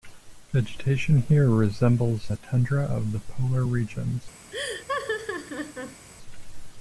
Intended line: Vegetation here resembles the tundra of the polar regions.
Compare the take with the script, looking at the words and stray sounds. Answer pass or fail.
fail